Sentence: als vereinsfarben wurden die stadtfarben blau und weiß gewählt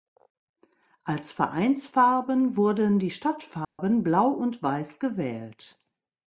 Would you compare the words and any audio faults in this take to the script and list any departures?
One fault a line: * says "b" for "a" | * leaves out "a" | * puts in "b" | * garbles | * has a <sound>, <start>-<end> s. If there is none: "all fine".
* has a dropout, 3.6-3.8 s